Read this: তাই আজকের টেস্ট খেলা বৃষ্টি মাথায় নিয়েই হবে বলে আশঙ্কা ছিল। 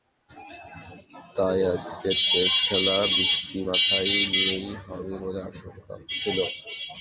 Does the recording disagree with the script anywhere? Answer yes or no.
no